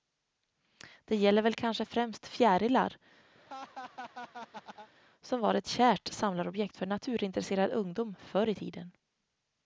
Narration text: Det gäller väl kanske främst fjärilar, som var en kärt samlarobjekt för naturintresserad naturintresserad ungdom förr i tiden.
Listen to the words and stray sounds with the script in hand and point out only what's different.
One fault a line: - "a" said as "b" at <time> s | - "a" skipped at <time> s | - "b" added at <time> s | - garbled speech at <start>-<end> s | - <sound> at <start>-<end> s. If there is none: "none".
- laugh at 3.3-4.9 s
- "en" said as "ett" at 5.5 s
- "naturintresserad" skipped at 7.7 s